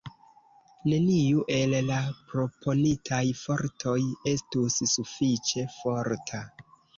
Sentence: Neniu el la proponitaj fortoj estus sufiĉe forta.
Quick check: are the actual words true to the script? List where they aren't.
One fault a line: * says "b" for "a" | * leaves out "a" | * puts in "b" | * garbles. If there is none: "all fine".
all fine